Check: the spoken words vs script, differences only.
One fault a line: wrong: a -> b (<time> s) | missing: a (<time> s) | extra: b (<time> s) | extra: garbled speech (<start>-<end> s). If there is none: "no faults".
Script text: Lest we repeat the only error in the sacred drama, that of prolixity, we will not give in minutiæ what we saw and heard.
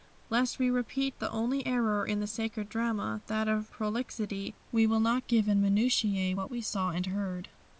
no faults